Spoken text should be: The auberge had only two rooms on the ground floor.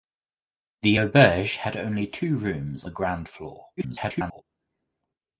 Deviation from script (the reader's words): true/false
true